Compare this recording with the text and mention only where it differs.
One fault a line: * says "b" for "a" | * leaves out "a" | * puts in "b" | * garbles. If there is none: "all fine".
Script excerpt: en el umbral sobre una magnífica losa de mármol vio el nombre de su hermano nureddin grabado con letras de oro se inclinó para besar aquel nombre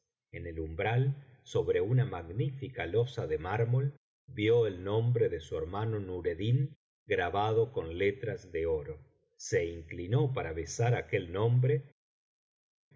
all fine